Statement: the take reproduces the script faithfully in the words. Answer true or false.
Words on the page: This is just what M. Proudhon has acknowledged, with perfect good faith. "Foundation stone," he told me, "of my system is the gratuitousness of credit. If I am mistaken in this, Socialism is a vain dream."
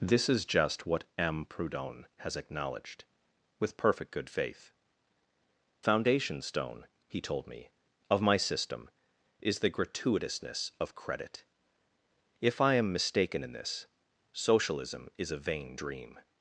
true